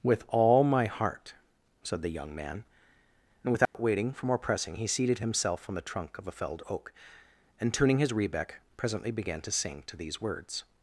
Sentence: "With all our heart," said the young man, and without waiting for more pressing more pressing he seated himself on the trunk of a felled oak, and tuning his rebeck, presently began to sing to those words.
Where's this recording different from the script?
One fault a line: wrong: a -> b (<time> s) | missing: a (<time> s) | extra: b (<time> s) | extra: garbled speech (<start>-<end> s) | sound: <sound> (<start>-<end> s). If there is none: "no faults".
wrong: our -> my (0.6 s)
sound: dropout (3.7-3.7 s)
missing: more pressing (4.8 s)
wrong: those -> these (10.0 s)